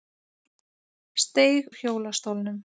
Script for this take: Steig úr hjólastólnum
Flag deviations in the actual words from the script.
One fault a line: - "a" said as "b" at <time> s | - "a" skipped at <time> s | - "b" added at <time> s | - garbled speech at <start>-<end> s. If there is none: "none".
none